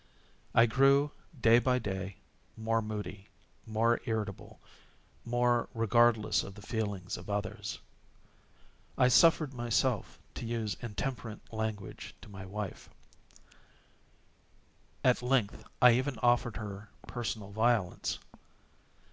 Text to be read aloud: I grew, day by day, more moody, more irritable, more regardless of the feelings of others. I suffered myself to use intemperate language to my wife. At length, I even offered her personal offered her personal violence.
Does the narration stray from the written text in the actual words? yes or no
yes